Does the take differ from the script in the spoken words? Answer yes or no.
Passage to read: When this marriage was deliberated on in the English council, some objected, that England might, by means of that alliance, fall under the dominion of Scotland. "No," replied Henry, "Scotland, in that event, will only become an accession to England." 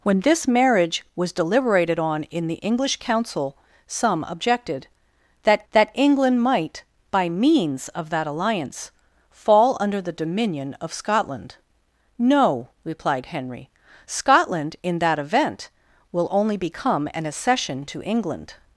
yes